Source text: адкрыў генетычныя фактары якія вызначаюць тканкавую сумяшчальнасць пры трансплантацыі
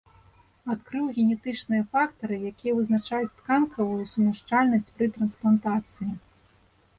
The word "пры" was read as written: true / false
true